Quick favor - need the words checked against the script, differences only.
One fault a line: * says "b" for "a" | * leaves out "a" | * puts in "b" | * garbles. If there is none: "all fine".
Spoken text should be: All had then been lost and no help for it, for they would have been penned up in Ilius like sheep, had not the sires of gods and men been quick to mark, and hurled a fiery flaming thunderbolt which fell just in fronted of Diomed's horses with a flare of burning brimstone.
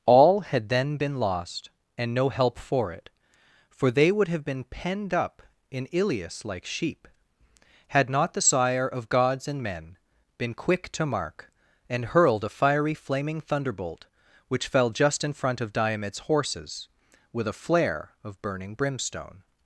* says "sire" for "sires"
* says "front" for "fronted"